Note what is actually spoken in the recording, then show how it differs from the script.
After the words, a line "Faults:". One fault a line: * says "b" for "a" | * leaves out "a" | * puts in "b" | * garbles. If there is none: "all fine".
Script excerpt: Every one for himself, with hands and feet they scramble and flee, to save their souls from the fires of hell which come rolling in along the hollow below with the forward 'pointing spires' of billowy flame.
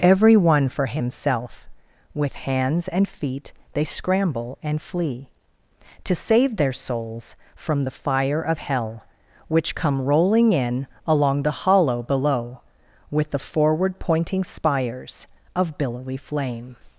Every one for himself, with hands and feet they scramble and flee, to save their souls from the fire of hell which come rolling in along the hollow below with the forward 'pointing spires' of billowy flame.
Faults:
* says "fire" for "fires"